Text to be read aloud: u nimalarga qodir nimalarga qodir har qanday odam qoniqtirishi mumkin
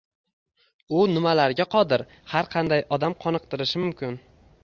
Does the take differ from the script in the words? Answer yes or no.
yes